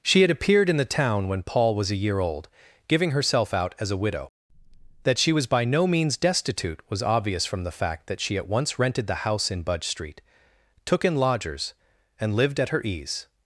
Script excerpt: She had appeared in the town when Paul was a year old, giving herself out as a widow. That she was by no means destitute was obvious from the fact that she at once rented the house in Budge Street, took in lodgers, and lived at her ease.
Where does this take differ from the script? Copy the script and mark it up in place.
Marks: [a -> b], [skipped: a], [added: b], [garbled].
She had appeared in the town when Paul was a year old, giving herself out as a widow. That she was by no means destitute was obvious from the fact that she at once rented the house in Budge Street, took in lodgers, and lived at her ease.